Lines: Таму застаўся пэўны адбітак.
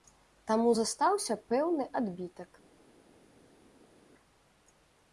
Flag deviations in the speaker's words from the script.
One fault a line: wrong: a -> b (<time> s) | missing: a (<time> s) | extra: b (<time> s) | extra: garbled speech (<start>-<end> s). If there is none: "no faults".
no faults